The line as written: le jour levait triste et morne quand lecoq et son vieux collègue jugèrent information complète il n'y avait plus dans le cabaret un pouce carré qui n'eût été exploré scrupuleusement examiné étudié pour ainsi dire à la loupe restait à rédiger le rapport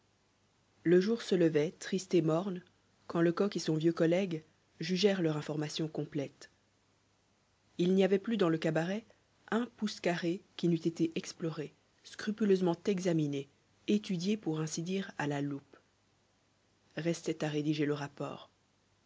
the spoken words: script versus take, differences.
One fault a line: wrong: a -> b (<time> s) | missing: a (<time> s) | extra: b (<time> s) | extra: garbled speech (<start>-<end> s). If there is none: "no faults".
extra: se (1.2 s)
extra: leur (5.2 s)